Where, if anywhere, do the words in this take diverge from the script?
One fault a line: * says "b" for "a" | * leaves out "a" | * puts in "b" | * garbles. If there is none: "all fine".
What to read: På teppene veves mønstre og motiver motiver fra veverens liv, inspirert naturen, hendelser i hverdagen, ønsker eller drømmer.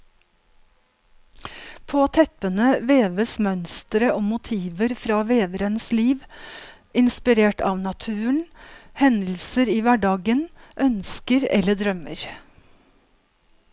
* leaves out "motiver"
* puts in "av"